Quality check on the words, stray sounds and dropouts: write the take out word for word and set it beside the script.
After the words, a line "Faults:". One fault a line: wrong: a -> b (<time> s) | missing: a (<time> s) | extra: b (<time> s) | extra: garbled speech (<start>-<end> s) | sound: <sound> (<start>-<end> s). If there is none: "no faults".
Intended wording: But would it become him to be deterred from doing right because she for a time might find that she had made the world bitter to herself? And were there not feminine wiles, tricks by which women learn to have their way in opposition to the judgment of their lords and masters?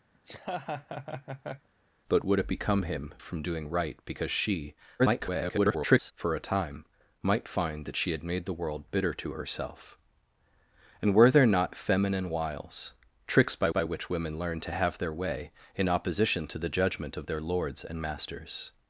But would it become him from doing right because she [garbled] for a time might find that she had made the world bitter to herself? And were there not feminine wiles, tricks by by which women learn to have their way in opposition to the judgment of their lords and masters?
Faults:
sound: laugh (0.1-1.7 s)
missing: to be deterred (3.1 s)
extra: garbled speech (5.0-6.1 s)
extra: by (13.7 s)